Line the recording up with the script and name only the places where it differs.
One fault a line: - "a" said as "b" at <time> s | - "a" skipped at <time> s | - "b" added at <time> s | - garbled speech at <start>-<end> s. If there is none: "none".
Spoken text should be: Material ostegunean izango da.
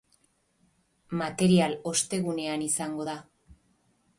none